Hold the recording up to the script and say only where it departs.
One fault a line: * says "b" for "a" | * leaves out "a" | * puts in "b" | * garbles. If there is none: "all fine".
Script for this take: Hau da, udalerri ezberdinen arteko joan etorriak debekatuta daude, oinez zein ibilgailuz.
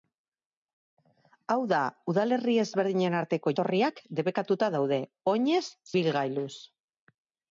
* leaves out "joan"
* leaves out "zein"